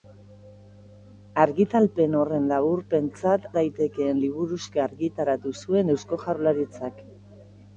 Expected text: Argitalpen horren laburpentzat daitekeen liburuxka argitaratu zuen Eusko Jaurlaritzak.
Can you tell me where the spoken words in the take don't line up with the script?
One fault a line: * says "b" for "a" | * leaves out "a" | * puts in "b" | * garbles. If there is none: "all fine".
all fine